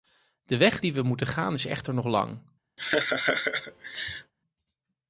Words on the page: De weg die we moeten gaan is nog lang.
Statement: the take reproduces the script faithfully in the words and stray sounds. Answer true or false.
false